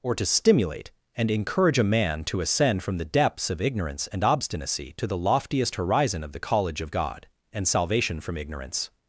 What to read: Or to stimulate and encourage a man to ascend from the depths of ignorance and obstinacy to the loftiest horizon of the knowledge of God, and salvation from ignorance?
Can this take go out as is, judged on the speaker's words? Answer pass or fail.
fail